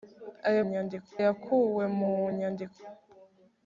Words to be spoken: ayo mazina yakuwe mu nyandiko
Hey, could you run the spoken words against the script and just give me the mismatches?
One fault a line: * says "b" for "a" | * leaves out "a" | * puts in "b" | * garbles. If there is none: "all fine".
* says "nyandiko" for "mazina"